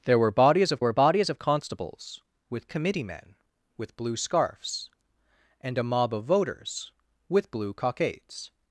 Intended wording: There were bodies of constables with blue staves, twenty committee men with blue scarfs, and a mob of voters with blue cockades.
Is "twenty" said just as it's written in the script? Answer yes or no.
no